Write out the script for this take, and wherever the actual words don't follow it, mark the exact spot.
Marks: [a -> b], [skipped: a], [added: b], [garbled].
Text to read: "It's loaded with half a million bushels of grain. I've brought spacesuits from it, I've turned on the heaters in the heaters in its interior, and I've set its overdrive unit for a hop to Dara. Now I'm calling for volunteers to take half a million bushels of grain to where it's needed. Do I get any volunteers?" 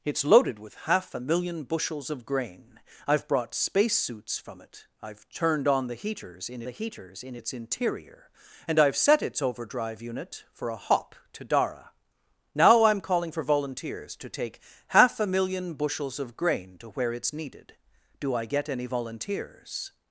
"It's loaded with half a million bushels of grain. I've brought spacesuits from it, I've turned on the heaters in the heaters in its interior, and I've set its overdrive unit for a hop to Dara. Now I'm calling for volunteers to take half a million bushels of grain to where it's needed. Do I get any volunteers?"